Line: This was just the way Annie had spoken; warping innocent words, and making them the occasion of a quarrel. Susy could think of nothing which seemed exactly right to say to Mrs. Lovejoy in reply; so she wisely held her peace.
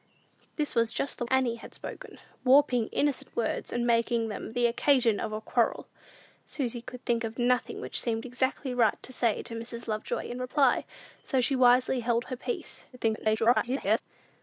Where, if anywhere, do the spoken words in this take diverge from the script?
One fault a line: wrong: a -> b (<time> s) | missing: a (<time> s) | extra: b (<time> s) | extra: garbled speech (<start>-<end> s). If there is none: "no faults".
missing: way (1.3 s)
extra: garbled speech (12.9-14.0 s)